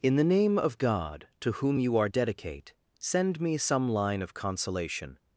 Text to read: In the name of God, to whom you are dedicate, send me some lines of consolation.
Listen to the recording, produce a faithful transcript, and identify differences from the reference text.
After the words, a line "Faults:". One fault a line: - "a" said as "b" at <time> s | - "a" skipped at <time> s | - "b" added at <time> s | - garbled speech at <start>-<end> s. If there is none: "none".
In the name of God, to whom you are dedicate, send me some line of consolation.
Faults:
- "lines" said as "line" at 3.9 s